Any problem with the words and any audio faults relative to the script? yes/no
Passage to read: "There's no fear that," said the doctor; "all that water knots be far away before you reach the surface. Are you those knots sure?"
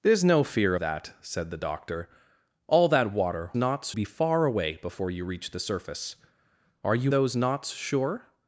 no